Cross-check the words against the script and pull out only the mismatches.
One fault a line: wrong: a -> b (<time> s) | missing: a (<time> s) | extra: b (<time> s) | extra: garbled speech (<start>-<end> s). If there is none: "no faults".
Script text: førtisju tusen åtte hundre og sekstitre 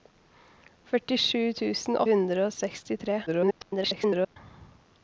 missing: åtte (2.0 s)
extra: garbled speech (3.3-4.4 s)